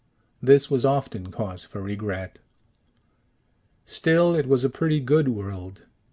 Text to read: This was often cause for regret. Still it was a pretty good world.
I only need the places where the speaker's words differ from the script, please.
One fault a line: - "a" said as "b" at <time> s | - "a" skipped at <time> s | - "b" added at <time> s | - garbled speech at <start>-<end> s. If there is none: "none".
none